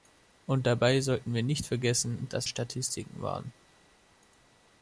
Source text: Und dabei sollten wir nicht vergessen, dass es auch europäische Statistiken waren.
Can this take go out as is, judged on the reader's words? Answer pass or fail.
fail